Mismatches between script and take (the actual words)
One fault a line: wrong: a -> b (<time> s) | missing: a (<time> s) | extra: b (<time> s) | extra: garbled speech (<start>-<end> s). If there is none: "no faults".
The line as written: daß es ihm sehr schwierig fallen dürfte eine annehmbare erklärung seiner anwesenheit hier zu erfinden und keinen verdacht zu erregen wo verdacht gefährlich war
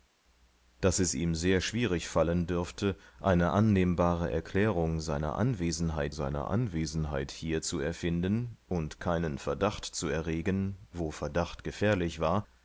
extra: seiner anwesenheit (6.1 s)